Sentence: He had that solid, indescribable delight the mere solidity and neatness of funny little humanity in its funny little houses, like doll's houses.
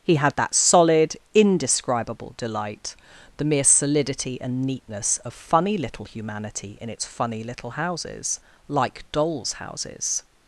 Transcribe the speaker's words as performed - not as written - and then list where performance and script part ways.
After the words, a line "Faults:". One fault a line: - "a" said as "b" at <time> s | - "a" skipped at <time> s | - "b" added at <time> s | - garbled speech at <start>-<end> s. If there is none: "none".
He had that solid, indescribable delight the mere solidity and neatness of funny little humanity in its funny little houses, like doll's houses.
Faults:
none